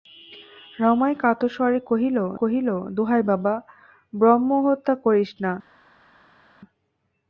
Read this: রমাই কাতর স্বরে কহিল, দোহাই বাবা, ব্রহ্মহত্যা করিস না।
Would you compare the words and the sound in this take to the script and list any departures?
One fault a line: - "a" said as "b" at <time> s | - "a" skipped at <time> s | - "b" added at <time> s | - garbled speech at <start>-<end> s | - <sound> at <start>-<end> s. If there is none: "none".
- "কহিল" added at 2.4 s